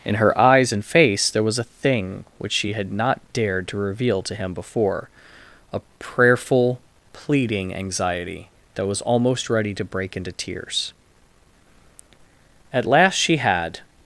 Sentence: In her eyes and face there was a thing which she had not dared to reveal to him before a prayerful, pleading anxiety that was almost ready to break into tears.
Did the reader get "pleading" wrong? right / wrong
right